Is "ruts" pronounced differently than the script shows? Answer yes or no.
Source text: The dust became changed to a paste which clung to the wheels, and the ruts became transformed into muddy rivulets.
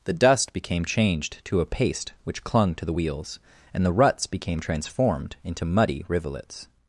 no